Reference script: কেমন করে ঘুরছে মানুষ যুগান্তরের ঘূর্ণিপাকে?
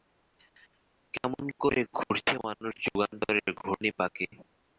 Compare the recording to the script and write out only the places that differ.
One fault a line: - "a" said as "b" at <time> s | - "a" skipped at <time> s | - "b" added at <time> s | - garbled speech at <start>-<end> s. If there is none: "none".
none